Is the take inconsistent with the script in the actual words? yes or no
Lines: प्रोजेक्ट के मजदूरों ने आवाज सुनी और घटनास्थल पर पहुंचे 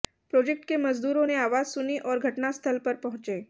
no